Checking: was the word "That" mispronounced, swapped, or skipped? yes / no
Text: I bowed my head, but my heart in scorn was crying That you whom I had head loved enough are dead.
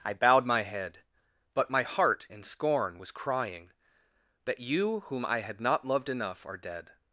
no